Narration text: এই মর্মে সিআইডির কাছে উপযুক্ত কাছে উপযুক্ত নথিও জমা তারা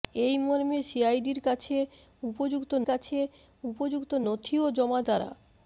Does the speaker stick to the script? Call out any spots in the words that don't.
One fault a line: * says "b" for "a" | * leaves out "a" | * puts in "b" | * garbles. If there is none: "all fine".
all fine